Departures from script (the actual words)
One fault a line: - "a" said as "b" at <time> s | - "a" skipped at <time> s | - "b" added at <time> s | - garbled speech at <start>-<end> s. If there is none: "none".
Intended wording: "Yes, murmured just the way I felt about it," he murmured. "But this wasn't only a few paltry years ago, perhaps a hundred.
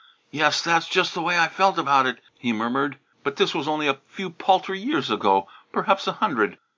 - "murmured" said as "that's" at 0.6 s
- "wasn't" said as "was" at 3.5 s